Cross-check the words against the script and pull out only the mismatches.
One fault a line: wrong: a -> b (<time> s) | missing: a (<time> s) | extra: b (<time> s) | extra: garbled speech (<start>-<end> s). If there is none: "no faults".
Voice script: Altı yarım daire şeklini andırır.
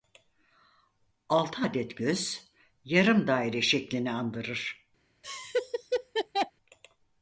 extra: adet göz (1.6 s)